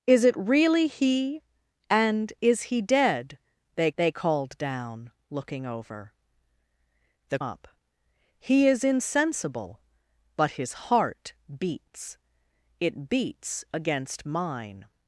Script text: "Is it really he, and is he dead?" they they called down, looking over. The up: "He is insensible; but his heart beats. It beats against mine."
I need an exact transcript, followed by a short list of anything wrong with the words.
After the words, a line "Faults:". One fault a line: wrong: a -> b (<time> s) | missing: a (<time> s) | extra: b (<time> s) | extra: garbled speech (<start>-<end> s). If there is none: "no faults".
"Is it really he, and is he dead?" they they called down, looking over. The up: "He is insensible; but his heart beats. It beats against mine."
Faults:
no faults